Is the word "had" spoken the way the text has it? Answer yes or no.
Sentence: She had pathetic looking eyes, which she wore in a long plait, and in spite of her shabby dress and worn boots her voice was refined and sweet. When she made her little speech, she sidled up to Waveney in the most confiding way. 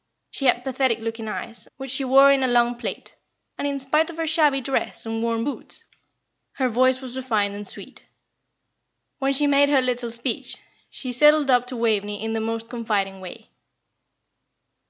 yes